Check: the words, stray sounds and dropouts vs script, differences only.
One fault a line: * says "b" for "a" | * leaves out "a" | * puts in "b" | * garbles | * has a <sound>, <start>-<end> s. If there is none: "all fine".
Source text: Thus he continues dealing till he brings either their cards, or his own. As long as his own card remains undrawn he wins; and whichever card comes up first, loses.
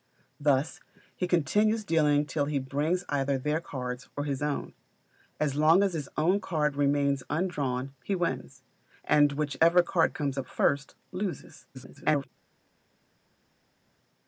* garbles